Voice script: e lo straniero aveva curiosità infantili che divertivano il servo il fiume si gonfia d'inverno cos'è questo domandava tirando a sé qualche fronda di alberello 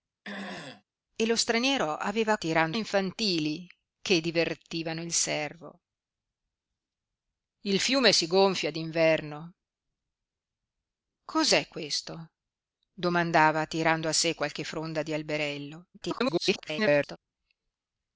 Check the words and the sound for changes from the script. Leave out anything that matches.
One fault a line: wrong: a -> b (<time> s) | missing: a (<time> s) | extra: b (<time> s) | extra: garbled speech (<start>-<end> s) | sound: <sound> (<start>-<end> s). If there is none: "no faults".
sound: throat clearing (0.2-0.8 s)
wrong: curiosità -> tirando (2.4 s)
extra: garbled speech (15.9-17.2 s)